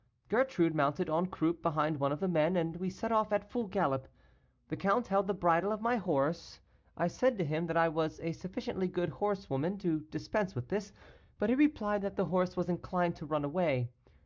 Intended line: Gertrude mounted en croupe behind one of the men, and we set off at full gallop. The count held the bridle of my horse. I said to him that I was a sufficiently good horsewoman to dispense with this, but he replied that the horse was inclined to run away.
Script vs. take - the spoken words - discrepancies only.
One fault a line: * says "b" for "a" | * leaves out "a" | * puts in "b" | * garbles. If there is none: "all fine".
all fine